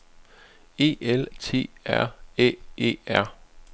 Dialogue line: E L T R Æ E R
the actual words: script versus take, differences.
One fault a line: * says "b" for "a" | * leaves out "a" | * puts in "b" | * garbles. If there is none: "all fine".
all fine